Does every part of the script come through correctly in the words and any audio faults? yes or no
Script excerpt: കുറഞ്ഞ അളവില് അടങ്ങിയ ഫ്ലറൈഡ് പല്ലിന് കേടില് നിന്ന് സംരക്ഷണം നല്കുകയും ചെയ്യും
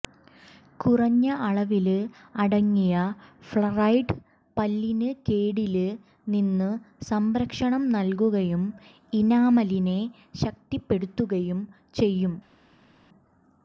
no